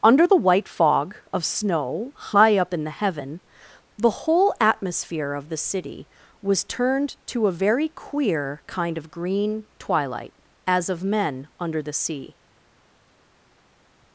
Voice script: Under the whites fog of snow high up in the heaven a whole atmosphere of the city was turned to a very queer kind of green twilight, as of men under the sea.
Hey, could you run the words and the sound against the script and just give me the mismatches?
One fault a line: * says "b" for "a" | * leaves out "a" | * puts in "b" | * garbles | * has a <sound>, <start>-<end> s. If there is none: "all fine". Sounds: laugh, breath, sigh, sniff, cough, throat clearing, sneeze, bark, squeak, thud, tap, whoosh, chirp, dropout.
* says "white" for "whites"
* says "the" for "a"